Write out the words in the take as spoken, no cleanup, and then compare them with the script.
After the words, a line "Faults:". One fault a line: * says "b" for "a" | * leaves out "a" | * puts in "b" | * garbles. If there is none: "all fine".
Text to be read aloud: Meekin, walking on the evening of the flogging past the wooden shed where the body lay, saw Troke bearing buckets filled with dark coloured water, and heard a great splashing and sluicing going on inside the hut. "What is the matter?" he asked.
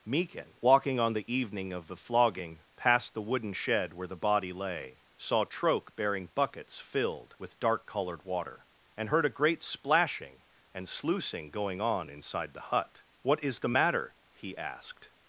Meekin, walking on the evening of the flogging past the wooden shed where the body lay, saw Troke bearing buckets filled with dark coloured water, and heard a great splashing and sluicing going on inside the hut. "What is the matter?" he asked.
Faults:
all fine